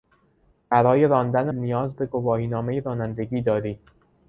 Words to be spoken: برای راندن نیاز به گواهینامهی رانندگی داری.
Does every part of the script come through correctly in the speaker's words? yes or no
yes